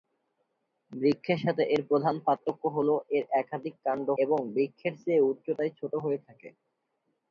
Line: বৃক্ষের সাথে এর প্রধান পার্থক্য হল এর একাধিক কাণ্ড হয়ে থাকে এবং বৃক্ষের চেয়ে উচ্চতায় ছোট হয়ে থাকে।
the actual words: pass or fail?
fail